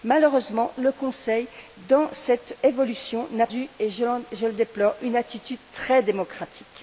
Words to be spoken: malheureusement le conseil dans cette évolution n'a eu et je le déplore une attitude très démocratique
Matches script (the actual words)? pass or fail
pass